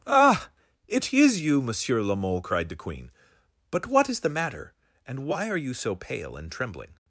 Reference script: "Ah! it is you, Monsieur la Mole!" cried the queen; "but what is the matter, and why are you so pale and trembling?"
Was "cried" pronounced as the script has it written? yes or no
yes